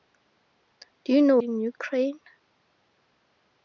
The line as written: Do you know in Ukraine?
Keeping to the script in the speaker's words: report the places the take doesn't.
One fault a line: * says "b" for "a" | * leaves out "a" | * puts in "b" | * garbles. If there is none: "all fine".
all fine